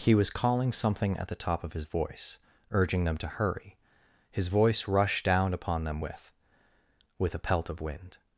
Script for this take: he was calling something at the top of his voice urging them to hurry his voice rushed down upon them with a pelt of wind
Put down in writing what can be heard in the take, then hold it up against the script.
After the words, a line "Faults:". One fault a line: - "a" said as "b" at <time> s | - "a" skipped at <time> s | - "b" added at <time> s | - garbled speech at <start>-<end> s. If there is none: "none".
he was calling something at the top of his voice urging them to hurry his voice rushed down upon them with with a pelt of wind
Faults:
- "with" added at 7.2 s